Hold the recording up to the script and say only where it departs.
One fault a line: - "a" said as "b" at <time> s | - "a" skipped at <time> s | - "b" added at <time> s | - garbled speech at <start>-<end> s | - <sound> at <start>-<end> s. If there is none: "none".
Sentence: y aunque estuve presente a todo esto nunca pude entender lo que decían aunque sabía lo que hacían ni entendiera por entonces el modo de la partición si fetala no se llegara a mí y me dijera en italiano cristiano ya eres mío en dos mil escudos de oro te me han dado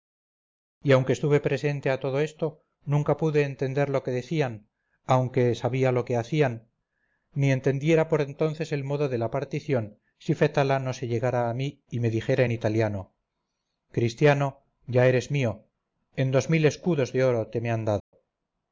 - dropout at 18.0-18.1 s